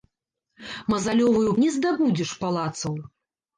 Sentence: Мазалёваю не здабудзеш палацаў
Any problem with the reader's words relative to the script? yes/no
no